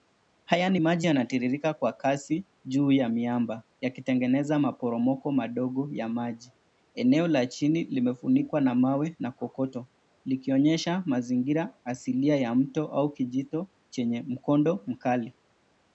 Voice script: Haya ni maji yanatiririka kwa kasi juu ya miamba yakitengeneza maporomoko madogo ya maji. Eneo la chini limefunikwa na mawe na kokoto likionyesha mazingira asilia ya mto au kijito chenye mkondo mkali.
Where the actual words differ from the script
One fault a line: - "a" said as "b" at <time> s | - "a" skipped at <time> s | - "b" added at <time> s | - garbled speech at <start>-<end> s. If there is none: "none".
none